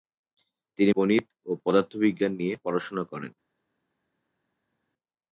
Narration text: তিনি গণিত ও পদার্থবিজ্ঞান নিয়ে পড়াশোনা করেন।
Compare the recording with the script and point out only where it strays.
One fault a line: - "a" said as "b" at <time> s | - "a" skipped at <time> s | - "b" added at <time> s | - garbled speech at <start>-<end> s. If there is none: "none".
none